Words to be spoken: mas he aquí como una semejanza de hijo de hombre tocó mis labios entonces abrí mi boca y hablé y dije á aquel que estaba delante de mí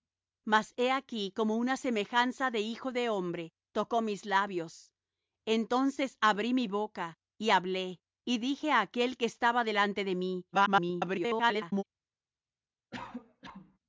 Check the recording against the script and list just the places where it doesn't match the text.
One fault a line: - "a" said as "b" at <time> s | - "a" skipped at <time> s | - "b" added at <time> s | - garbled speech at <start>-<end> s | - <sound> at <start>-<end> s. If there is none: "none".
- garbled speech at 10.5-11.8 s
- cough at 12.9-13.8 s